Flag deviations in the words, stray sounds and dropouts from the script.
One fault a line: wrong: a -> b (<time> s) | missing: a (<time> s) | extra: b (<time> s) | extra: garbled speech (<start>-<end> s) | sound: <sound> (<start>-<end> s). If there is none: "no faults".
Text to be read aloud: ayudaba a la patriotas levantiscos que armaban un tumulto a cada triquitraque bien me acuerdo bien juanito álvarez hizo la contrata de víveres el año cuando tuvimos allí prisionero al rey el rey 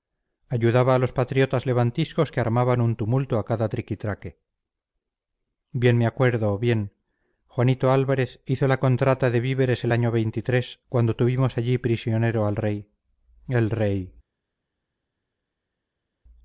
wrong: la -> los (1.0 s)